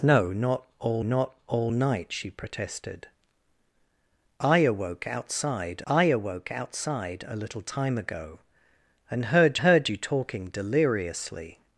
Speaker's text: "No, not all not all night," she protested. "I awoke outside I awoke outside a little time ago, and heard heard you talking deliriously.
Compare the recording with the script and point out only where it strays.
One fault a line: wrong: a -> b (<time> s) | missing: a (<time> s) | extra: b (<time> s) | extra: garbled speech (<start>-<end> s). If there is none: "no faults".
no faults